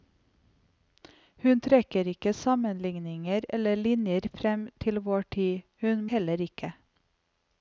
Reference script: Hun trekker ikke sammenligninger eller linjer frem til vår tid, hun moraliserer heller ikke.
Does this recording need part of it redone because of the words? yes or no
yes